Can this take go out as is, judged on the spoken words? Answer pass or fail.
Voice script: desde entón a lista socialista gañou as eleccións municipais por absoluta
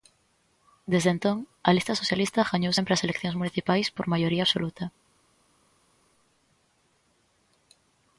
fail